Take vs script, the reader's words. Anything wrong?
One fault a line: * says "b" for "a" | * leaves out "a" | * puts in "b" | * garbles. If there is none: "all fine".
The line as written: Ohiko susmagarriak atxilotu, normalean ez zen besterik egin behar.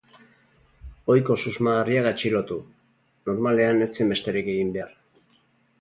all fine